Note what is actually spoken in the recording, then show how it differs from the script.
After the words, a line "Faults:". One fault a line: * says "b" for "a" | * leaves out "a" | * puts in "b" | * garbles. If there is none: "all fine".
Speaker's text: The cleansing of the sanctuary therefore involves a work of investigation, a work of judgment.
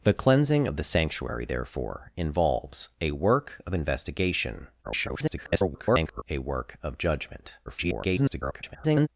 The cleansing of the sanctuary therefore involves a work of investigation, [garbled] a work of judgment. [garbled]
Faults:
* garbles
* garbles